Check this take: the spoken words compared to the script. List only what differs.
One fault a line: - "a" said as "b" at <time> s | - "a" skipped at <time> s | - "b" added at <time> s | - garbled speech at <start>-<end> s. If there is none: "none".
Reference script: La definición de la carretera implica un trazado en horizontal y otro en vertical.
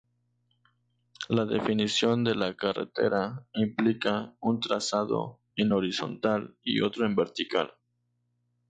none